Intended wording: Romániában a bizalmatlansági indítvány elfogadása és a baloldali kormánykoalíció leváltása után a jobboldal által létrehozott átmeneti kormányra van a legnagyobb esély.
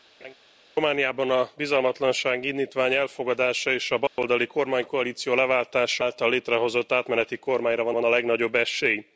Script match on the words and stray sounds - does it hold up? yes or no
no